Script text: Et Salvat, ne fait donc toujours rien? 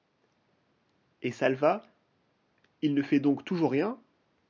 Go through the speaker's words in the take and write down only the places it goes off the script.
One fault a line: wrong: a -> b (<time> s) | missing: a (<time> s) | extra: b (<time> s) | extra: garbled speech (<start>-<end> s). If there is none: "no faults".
extra: il (2.8 s)